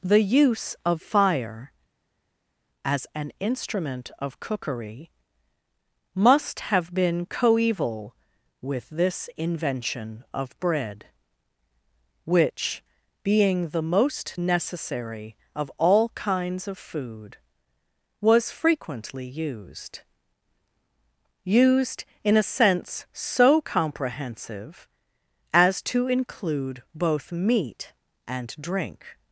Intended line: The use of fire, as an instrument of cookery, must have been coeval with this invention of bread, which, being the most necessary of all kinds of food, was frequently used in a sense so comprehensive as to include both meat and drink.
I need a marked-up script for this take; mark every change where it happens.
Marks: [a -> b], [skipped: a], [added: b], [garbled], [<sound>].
The use of fire, as an instrument of cookery, must have been coeval with this invention of bread, which, being the most necessary of all kinds of food, was frequently used [added: used] in a sense so comprehensive as to include both meat and drink.